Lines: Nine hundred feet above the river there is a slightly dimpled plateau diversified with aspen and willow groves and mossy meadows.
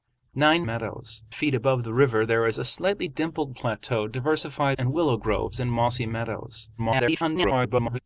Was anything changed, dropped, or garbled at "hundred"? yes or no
yes